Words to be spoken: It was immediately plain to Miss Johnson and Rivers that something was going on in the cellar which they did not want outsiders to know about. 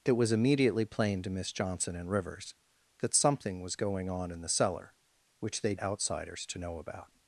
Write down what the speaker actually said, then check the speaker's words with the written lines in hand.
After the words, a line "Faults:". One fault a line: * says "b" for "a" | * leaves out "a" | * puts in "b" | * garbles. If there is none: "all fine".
It was immediately plain to Miss Johnson and Rivers that something was going on in the cellar which they outsiders to know about.
Faults:
* leaves out "did not want"